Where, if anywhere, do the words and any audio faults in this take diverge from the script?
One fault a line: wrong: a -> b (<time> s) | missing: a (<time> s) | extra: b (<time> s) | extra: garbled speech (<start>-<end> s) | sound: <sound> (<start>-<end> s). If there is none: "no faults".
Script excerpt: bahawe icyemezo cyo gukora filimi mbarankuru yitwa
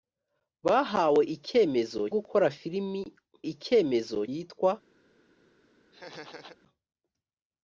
missing: cyo (2.0 s)
wrong: mbarankuru -> icyemezo (3.5 s)
sound: laugh (5.9-6.6 s)